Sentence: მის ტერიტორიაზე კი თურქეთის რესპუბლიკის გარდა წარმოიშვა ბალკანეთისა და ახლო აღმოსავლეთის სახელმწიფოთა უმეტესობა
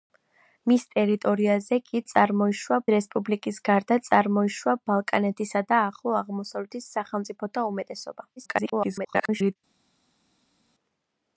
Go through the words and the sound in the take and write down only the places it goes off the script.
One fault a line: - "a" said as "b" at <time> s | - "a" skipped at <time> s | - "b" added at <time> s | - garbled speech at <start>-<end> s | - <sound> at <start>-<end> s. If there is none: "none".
- "თურქეთის" said as "წარმოიშვა" at 2.1 s
- garbled speech at 8.4-9.6 s